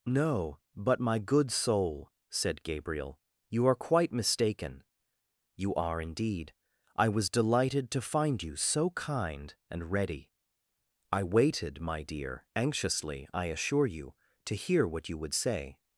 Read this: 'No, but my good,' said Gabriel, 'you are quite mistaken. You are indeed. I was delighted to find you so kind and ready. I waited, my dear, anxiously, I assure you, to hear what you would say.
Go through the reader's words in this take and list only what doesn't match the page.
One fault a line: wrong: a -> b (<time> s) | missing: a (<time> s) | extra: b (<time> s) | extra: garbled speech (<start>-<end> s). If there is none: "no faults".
extra: soul (1.5 s)